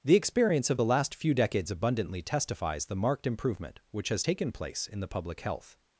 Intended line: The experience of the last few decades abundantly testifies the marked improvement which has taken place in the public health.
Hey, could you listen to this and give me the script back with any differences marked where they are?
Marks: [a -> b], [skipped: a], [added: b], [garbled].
The experience of the last few decades abundantly testifies the marked improvement which has taken place in the public health.